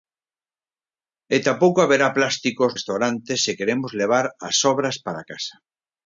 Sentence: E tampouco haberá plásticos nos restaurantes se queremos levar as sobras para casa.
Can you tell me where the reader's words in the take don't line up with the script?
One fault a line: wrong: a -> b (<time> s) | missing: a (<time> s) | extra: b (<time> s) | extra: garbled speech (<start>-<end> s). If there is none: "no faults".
missing: nos (2.7 s)